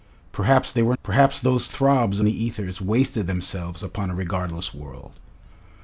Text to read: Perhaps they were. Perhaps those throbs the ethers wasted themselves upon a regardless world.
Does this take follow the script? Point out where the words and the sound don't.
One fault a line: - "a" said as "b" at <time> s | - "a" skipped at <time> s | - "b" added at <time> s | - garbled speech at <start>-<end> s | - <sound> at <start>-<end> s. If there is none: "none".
none